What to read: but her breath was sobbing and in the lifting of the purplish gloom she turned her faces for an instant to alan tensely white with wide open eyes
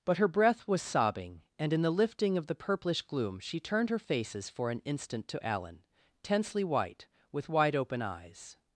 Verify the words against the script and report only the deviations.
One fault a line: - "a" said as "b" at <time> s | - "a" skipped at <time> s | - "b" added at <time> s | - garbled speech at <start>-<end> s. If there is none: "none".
none